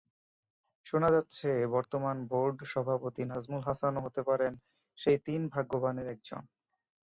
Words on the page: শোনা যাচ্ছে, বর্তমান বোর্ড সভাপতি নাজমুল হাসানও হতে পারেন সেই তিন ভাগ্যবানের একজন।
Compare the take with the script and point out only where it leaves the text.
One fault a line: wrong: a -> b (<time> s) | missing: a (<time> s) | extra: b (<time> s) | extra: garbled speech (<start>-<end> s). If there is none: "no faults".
no faults